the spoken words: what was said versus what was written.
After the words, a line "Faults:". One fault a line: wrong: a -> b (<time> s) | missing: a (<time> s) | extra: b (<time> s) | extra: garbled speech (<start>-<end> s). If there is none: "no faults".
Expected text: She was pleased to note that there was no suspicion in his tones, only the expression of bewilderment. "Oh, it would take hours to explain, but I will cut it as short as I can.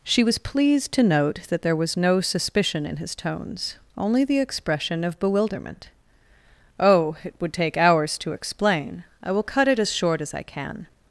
She was pleased to note that there was no suspicion in his tones, only the expression of bewilderment. "Oh, it would take hours to explain, I will cut it as short as I can.
Faults:
missing: but (9.0 s)